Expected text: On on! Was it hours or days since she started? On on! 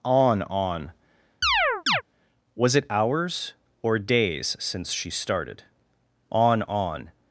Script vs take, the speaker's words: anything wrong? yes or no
no